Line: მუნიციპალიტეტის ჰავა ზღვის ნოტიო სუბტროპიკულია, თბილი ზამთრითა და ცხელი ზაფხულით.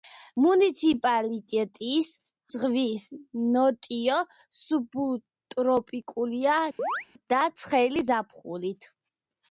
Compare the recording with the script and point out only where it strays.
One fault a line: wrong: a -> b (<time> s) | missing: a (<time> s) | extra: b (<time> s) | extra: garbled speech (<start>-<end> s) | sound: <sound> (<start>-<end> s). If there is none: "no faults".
missing: ჰავა (2.1 s)
missing: თბილი ზამთრითა (6.5 s)
sound: chirp (6.8-7.1 s)